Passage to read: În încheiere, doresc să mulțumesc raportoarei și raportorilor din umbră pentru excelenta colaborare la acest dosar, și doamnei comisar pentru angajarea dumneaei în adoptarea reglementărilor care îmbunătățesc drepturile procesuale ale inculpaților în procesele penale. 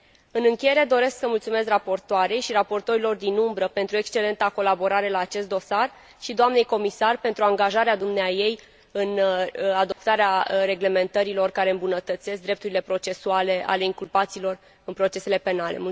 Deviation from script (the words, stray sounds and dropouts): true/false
true